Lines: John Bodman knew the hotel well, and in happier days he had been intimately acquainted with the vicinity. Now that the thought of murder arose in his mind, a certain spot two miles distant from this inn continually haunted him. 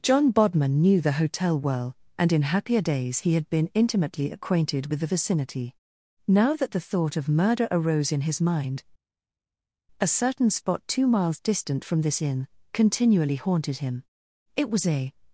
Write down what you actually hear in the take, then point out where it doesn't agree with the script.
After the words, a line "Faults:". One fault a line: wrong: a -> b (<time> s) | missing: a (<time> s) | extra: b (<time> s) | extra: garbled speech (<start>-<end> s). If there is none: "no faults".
John Bodman knew the hotel well, and in happier days he had been intimately acquainted with the vicinity. Now that the thought of murder arose in his mind, a certain spot two miles distant from this inn continually haunted him. It was a
Faults:
extra: It was a (14.6 s)